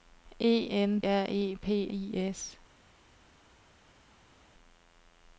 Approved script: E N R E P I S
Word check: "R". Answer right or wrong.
right